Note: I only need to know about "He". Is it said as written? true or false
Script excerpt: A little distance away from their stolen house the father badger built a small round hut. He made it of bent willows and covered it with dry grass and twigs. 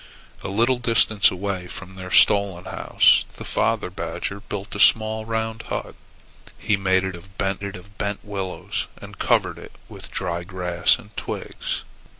true